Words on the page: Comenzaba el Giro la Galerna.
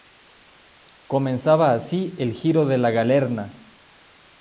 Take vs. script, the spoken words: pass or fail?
fail